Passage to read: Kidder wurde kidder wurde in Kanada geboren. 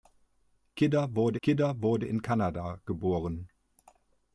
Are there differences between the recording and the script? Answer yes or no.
no